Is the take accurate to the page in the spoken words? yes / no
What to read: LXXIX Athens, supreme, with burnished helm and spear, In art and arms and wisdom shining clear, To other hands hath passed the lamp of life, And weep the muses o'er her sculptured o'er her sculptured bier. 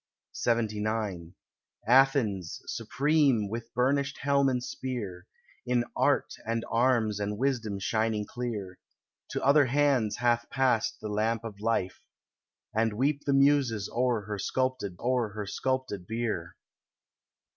yes